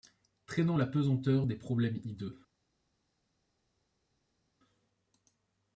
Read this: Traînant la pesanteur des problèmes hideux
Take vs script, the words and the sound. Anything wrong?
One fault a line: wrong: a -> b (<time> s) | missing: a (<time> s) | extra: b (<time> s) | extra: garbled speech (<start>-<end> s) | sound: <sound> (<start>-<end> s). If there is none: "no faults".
no faults